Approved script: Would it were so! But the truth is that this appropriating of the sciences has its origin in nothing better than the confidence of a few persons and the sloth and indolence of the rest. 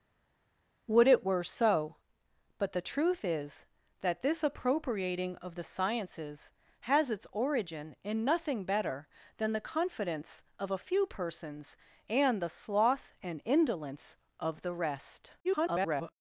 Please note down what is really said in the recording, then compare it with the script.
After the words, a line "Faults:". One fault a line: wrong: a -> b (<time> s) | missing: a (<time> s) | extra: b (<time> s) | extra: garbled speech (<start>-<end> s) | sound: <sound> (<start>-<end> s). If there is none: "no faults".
Would it were so! But the truth is that this appropriating of the sciences has its origin in nothing better than the confidence of a few persons and the sloth and indolence of the rest. [garbled]
Faults:
extra: garbled speech (15.4-16.1 s)